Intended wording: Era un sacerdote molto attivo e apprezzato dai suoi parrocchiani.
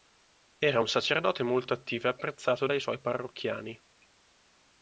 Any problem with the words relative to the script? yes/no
no